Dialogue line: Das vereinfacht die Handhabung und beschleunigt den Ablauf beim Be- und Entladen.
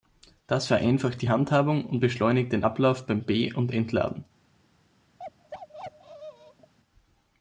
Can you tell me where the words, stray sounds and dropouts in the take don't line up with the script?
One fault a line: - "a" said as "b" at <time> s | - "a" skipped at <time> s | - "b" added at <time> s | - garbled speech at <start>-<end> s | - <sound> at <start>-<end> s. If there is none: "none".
- bark at 5.2-6.7 s